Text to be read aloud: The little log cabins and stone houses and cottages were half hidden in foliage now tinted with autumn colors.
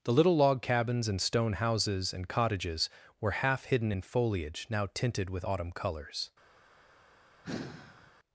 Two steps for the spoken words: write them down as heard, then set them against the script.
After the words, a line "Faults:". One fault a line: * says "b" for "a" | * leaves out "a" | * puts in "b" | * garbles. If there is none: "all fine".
The little log cabins and stone houses and cottages were half hidden in foliage now tinted with autumn colors.
Faults:
all fine